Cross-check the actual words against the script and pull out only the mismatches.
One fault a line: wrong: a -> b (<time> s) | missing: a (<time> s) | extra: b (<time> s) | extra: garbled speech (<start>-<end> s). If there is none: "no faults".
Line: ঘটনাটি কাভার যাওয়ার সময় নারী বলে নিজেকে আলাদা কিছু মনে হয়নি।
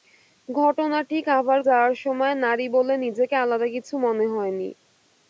no faults